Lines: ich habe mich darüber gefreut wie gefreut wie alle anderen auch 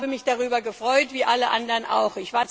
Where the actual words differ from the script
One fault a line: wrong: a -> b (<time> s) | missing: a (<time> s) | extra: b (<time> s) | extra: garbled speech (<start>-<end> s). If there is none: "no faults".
missing: gefreut wie (1.3 s)